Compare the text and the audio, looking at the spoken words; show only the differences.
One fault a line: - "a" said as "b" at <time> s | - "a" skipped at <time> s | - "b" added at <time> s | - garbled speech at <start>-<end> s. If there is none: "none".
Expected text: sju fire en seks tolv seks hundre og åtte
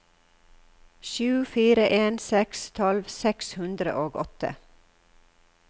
none